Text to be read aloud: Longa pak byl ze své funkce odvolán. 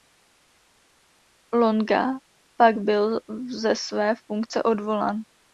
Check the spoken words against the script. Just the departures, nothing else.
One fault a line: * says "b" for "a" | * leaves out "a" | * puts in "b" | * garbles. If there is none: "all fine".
all fine